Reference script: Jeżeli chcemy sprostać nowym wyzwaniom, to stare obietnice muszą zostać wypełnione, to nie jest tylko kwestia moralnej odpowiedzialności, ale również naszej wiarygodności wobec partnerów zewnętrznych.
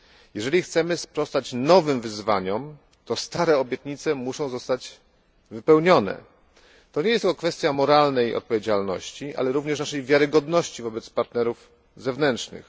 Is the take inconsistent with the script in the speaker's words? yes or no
no